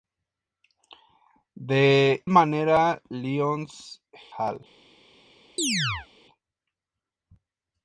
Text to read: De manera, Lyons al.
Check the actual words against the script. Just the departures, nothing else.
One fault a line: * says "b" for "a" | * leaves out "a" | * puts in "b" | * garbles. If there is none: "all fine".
all fine